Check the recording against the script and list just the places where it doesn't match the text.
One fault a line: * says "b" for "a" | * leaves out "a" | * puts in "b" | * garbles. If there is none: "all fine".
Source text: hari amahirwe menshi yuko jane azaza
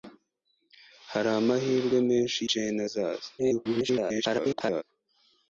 * leaves out "yuko"
* garbles